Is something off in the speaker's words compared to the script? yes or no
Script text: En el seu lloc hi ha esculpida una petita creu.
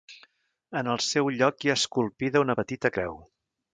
no